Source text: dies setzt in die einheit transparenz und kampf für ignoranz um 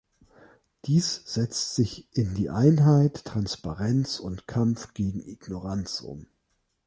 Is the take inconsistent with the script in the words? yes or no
yes